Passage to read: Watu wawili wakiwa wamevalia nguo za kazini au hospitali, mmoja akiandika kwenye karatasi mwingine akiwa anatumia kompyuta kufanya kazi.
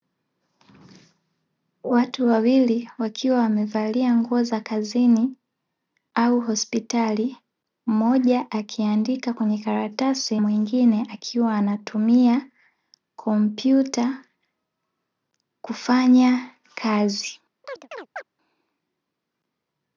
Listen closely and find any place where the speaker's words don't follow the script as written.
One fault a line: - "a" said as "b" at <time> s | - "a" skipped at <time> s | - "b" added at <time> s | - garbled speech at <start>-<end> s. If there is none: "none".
none